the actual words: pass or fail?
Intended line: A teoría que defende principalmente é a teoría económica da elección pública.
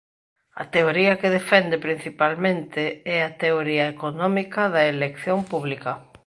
pass